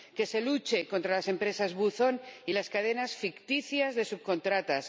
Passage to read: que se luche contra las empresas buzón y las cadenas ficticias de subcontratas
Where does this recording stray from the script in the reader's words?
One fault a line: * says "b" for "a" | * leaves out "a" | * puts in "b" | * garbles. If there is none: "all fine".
all fine